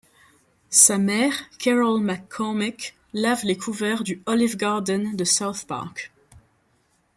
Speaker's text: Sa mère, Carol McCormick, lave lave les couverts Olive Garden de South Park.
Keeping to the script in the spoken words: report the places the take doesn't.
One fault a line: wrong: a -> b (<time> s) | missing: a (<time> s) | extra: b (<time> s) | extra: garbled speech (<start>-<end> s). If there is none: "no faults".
missing: lave (3.5 s)
extra: du (4.0 s)